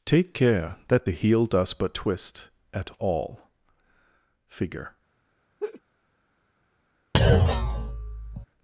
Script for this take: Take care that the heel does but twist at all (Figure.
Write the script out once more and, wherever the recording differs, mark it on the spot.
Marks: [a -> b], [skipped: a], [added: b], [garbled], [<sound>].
Take care that the heel does but twist at all (Figure. [laugh] [thud]